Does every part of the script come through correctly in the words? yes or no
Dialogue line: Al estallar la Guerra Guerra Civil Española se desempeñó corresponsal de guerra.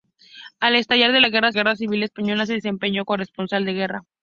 yes